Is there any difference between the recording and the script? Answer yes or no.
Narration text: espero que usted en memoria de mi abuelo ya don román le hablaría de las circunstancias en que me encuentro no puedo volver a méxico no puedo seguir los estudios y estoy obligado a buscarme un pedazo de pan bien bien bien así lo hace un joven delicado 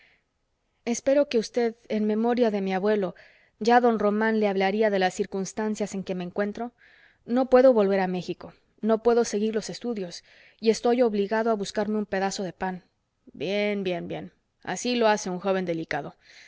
no